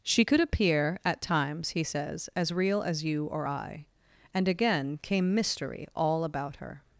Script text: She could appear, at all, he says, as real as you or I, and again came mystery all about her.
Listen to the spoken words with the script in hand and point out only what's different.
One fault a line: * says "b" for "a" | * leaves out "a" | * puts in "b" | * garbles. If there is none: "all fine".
* says "times" for "all"